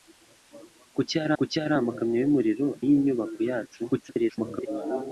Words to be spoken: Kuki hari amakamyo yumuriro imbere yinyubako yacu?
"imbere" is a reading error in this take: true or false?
true